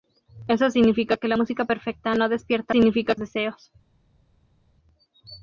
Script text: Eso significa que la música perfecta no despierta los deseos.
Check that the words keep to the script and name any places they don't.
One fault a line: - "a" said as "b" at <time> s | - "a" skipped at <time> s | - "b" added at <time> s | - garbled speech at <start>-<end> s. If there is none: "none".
- "los" said as "significa" at 2.7 s